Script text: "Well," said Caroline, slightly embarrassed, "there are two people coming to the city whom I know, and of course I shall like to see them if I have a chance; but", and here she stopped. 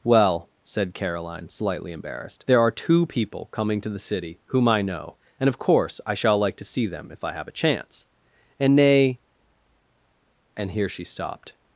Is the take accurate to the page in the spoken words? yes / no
no